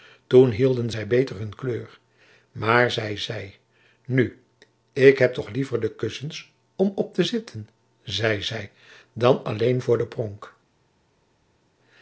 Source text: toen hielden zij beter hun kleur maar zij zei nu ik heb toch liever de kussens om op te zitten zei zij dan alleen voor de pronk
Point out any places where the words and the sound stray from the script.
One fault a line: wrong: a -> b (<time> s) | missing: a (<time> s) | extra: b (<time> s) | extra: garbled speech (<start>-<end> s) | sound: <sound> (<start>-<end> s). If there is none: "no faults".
no faults